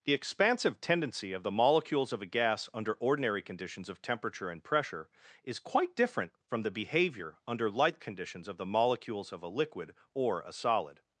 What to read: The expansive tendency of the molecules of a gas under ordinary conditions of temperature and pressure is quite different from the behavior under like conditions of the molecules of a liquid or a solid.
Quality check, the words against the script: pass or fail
fail